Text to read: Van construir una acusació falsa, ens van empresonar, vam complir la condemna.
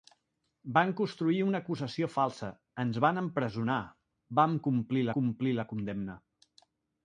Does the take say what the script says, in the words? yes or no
no